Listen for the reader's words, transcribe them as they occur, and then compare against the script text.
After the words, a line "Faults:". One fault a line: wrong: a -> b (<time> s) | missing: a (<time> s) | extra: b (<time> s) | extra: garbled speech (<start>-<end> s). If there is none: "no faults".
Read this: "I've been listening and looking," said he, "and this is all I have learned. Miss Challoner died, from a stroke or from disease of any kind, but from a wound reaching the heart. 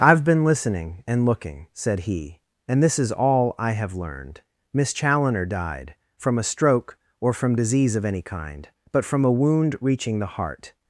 "I've been listening and looking," said he, "and this is all I have learned. Miss Challoner died, from a stroke or from disease of any kind, but from a wound reaching the heart.
Faults:
no faults